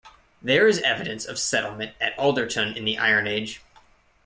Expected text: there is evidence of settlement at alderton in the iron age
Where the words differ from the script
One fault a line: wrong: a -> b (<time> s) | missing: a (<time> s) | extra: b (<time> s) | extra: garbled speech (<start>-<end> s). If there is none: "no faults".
no faults